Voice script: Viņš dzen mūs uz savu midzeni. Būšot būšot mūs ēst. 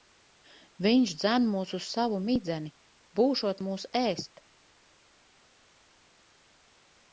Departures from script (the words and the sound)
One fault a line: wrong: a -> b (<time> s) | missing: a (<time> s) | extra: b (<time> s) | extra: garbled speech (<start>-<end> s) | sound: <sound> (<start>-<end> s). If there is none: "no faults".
missing: būšot (3.6 s)